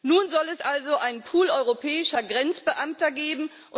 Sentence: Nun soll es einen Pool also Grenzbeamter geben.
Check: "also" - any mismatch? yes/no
yes